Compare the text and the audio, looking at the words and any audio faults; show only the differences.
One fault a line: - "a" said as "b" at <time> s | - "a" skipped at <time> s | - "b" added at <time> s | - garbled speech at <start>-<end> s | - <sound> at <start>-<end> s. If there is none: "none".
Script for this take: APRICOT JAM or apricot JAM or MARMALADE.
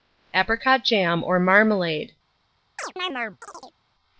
- "apricot JAM or" skipped at 1.4 s
- chirp at 2.8-3.8 s